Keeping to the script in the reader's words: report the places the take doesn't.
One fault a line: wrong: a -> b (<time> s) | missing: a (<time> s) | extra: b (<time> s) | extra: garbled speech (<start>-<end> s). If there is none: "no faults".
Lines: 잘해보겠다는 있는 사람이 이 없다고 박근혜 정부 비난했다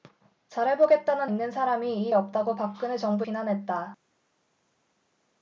no faults